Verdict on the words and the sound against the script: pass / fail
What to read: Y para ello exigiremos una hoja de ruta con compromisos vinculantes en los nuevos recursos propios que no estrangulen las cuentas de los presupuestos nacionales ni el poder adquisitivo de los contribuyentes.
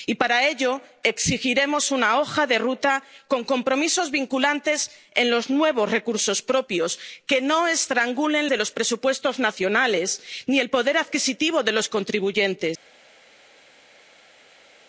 fail